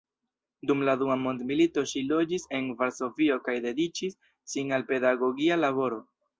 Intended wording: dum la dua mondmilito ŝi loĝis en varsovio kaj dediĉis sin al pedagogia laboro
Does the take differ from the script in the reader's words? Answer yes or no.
no